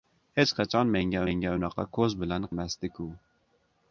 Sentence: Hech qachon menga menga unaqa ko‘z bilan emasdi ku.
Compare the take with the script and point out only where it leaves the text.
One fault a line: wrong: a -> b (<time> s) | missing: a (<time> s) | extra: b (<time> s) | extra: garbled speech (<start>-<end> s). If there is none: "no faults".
no faults